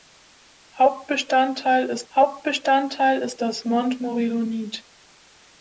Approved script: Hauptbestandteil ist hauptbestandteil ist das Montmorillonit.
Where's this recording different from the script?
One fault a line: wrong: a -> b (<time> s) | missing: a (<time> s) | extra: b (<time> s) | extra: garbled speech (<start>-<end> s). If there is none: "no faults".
no faults